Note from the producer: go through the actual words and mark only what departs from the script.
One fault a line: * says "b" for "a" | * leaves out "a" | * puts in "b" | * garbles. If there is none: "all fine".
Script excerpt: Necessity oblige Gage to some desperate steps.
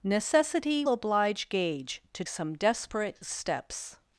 all fine